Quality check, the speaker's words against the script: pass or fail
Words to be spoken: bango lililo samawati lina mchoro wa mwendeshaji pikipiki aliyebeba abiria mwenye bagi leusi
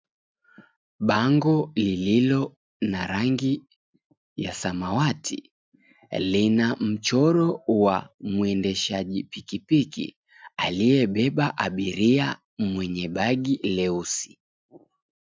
fail